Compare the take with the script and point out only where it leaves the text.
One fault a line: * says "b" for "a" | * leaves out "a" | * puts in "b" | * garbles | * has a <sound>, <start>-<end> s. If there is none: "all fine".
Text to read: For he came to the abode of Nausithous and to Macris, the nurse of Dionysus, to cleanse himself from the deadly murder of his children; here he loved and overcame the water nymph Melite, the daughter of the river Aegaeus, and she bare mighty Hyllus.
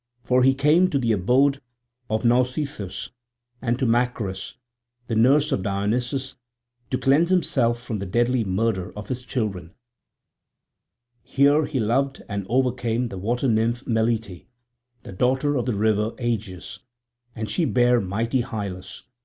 all fine